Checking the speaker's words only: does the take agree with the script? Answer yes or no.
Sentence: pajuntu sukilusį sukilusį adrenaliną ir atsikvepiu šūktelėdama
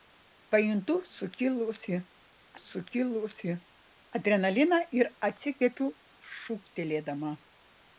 yes